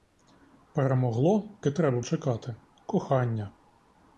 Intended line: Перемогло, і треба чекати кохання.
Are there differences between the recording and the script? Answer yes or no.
no